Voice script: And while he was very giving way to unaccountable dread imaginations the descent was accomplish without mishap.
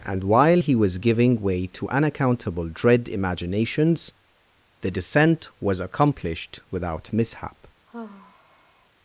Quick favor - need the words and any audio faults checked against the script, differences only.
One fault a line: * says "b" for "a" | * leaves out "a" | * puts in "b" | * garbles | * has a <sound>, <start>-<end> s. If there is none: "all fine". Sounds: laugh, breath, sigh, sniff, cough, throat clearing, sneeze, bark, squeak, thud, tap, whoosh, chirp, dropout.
* leaves out "very"
* says "accomplished" for "accomplish"
* has a sigh, 7.9-8.9 s